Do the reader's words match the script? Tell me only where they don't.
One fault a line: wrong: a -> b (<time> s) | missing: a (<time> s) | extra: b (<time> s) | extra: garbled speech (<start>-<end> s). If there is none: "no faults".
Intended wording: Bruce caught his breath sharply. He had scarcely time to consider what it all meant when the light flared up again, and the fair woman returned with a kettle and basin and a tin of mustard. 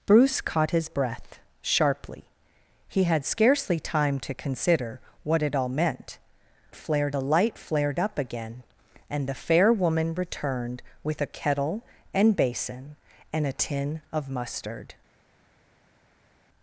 wrong: when -> flared (6.7 s)